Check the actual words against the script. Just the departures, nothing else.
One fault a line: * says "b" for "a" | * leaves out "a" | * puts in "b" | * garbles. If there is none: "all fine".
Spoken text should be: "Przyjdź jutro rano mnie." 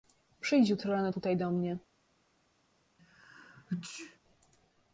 * puts in "tutaj do"